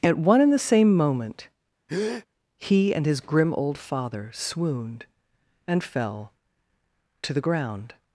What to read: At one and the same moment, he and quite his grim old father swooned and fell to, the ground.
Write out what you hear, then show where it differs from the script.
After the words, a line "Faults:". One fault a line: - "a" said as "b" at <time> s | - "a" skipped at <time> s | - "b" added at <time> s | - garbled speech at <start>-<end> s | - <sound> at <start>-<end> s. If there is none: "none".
At one and the same moment, he and his grim old father swooned and fell to, the ground.
Faults:
- breath at 1.9-2.3 s
- "quite" skipped at 3.1 s